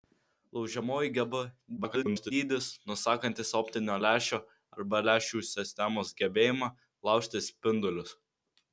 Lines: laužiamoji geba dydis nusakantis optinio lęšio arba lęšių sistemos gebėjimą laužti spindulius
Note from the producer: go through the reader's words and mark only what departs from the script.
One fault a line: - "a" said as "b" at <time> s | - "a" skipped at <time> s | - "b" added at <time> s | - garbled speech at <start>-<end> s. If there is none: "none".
- garbled speech at 1.8-2.3 s